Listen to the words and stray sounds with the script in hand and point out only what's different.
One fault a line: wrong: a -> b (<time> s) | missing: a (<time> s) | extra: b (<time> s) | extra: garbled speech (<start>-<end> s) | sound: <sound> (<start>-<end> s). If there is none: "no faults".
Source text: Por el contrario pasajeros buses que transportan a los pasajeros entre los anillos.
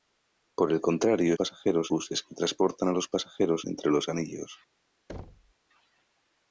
sound: thud (5.1-5.5 s)